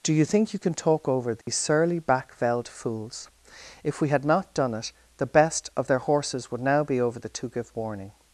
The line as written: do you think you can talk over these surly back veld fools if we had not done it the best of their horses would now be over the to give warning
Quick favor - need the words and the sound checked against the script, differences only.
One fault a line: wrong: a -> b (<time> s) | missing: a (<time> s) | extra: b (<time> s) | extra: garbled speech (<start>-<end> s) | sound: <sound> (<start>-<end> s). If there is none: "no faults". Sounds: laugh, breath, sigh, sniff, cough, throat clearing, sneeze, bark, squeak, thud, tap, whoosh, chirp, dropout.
sound: dropout (1.4-1.5 s)